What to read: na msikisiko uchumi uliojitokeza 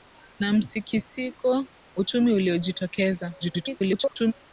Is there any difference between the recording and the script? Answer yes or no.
yes